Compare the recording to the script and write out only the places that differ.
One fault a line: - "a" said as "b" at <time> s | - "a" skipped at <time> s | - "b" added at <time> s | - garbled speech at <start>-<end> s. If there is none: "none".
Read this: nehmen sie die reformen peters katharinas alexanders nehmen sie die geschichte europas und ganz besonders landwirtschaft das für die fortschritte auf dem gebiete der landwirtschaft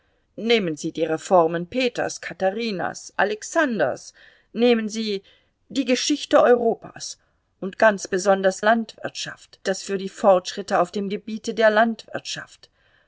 none